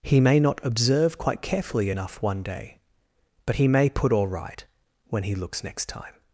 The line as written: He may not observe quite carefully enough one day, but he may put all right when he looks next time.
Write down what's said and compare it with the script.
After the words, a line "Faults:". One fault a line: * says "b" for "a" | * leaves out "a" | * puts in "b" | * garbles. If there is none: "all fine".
He may not observe quite carefully enough one day, but he may put all right when he looks next time.
Faults:
all fine